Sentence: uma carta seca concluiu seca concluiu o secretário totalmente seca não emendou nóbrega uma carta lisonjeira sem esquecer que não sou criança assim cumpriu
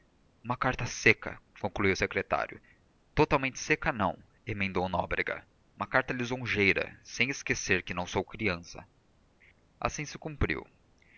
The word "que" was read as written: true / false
true